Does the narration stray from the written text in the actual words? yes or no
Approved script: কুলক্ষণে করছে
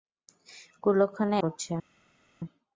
no